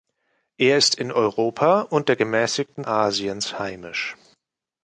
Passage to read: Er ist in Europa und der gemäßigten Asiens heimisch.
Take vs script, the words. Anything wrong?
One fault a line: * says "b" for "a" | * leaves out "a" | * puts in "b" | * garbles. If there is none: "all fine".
all fine